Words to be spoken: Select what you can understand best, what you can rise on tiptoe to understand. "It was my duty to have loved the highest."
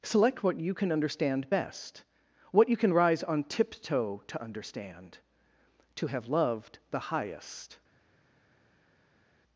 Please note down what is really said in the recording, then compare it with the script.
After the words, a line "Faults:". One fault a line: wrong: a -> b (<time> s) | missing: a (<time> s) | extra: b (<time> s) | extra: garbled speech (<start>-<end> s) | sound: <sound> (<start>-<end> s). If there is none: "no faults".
Select what you can understand best, what you can rise on tiptoe to understand. "to have loved the highest."
Faults:
missing: It was my duty (5.2 s)